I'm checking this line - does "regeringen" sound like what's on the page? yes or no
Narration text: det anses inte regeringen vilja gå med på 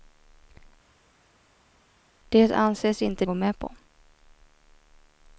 no